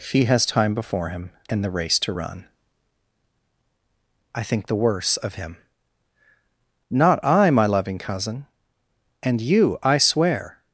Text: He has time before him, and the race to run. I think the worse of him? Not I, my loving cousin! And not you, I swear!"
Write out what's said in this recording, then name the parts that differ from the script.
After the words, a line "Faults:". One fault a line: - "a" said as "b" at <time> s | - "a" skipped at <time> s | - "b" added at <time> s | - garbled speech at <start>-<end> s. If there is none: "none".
He has time before him, and the race to run. I think the worse of him? Not I, my loving cousin! And you, I swear!"
Faults:
- "not" skipped at 9.4 s